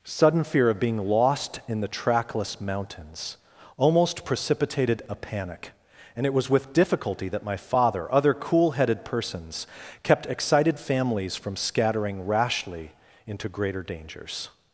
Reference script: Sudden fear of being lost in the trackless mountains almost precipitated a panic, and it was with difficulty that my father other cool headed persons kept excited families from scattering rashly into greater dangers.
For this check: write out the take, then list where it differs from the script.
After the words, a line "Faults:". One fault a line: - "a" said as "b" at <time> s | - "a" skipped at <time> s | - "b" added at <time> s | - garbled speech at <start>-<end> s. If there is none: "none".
Sudden fear of being lost in the trackless mountains almost precipitated a panic, and it was with difficulty that my father other cool headed persons kept excited families from scattering rashly into greater dangers.
Faults:
none